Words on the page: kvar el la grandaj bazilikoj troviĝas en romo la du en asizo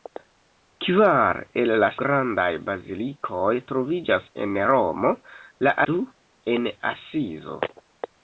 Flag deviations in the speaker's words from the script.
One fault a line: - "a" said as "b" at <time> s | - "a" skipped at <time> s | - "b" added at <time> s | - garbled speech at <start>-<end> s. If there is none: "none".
none